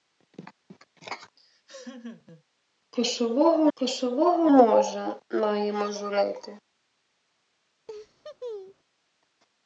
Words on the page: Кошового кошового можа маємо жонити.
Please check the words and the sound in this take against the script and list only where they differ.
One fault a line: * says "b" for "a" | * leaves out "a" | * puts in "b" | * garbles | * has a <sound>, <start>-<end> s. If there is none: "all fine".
* has a laugh, 1.4-2.4 s
* has a laugh, 7.9-8.8 s